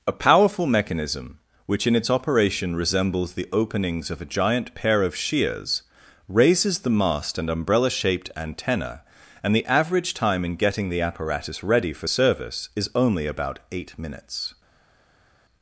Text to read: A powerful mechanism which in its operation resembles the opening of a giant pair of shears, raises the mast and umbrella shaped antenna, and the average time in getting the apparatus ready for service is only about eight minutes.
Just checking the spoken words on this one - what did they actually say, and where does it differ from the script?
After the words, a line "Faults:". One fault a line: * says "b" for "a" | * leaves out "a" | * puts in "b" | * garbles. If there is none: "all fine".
A powerful mechanism which in its operation resembles the openings of a giant pair of shears, raises the mast and umbrella shaped antenna, and the average time in getting the apparatus ready for service is only about eight minutes.
Faults:
* says "openings" for "opening"